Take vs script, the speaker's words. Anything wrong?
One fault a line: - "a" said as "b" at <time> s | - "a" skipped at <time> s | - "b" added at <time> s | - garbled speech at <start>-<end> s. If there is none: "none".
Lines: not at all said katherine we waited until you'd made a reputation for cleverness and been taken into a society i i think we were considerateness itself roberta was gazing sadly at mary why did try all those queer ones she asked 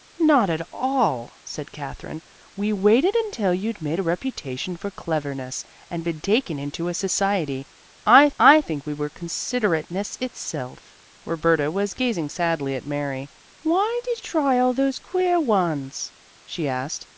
none